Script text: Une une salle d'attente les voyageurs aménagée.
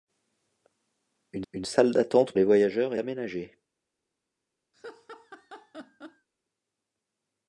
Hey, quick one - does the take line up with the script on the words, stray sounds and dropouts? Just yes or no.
no